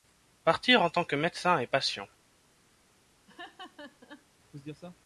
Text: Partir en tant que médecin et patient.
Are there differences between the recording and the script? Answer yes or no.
no